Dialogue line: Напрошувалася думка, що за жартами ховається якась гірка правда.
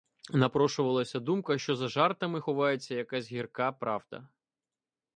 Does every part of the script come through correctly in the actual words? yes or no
yes